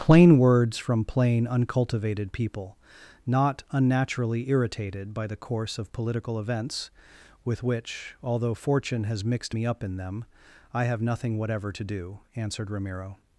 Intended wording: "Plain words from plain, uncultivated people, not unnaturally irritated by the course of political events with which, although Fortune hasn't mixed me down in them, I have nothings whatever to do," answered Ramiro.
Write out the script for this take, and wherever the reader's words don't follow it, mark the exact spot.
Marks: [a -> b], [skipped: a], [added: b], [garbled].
"Plain words from plain, uncultivated people, not unnaturally irritated by the course of political events with which, although Fortune [hasn't -> has] mixed me [down -> up] in them, I have [nothings -> nothing] whatever to do," answered Ramiro.